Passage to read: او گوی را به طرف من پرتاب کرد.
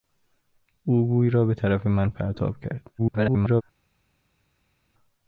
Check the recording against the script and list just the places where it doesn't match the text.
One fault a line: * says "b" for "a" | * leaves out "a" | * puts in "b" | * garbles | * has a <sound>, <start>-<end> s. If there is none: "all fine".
* garbles